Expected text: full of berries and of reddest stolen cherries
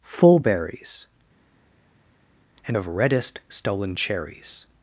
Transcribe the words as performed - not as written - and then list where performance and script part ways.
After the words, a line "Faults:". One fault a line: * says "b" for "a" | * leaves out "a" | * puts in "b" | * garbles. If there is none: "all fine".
full berries and of reddest stolen cherries
Faults:
* leaves out "of"